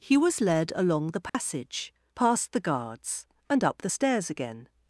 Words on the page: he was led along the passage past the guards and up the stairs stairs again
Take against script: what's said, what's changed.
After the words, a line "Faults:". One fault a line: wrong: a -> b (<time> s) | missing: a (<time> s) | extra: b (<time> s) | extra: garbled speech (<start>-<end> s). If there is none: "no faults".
he was led along the passage past the guards and up the stairs again
Faults:
missing: stairs (4.3 s)